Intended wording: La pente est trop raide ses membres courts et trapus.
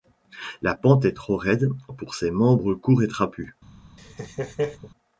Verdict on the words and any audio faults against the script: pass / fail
fail